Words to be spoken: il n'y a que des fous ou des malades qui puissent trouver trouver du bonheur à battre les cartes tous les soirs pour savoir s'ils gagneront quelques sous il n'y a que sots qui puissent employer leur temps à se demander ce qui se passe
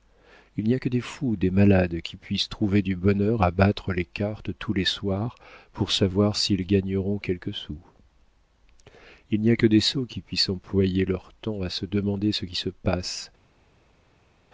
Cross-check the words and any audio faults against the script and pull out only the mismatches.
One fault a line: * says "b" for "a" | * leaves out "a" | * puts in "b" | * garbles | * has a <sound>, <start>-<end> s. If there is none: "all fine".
* leaves out "trouver"
* puts in "des"